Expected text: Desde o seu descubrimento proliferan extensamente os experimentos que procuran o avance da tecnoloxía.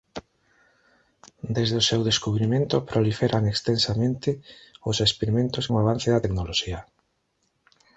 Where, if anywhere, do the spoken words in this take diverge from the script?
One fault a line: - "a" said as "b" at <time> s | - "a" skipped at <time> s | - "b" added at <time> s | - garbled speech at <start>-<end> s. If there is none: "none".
- "que procuran" skipped at 5.7 s